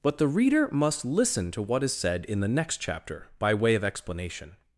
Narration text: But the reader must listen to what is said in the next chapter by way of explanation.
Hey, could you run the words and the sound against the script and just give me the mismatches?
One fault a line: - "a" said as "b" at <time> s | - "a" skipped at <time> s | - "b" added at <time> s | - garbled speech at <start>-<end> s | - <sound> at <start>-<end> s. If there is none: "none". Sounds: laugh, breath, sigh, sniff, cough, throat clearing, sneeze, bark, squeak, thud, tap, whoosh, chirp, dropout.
none